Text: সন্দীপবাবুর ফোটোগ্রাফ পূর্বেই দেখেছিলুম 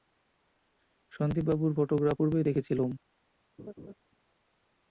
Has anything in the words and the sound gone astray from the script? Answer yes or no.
yes